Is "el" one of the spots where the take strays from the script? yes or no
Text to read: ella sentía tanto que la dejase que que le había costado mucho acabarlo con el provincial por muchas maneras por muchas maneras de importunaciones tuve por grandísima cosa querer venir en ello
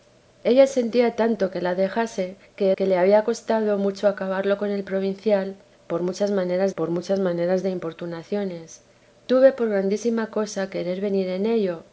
no